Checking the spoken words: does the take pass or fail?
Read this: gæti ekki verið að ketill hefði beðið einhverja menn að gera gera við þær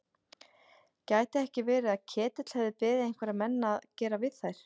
fail